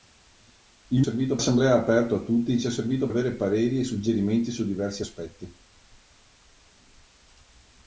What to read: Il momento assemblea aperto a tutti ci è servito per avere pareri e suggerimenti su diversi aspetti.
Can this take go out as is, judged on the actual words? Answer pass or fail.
fail